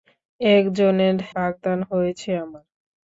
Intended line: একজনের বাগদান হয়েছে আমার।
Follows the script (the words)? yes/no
yes